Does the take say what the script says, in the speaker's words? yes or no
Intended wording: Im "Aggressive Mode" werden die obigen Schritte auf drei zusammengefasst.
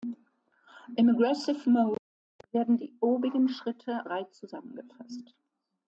no